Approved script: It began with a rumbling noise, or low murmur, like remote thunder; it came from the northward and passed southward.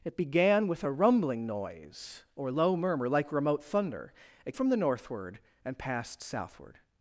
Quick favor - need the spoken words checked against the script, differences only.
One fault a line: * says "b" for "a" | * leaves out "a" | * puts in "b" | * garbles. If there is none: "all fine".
* leaves out "came"